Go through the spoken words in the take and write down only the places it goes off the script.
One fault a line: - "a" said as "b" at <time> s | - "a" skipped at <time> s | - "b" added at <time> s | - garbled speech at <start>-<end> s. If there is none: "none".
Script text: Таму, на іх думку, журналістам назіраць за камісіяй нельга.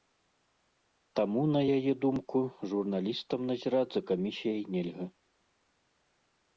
- "іх" said as "яе" at 1.8 s